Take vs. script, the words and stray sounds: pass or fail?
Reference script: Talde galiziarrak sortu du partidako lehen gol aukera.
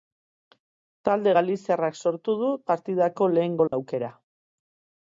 fail